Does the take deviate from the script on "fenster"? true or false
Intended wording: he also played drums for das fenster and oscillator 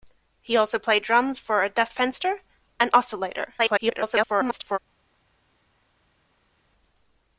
false